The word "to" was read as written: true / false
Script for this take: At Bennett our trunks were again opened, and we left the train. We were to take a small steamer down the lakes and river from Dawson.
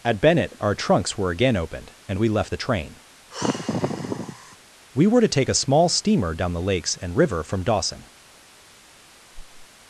true